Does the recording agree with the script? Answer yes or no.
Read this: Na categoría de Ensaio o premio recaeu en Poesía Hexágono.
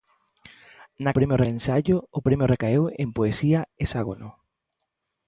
no